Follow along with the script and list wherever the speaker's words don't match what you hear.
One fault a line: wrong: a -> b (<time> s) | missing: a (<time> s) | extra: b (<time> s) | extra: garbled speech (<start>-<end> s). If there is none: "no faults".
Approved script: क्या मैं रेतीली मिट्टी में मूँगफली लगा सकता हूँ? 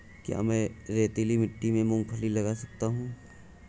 no faults